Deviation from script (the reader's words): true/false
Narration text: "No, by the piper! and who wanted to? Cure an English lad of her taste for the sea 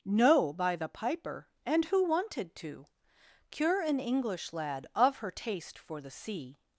false